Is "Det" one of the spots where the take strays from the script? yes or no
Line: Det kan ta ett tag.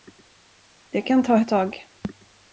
no